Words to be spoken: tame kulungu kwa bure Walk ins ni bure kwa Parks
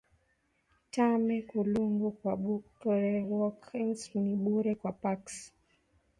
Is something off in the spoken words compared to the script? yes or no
no